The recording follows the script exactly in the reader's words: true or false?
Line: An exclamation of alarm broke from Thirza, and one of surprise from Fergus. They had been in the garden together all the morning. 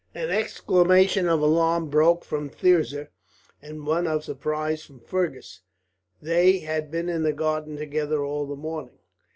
true